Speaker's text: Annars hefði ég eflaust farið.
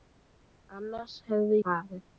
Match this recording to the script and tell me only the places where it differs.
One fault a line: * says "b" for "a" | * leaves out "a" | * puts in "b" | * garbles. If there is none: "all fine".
* leaves out "ég eflaust"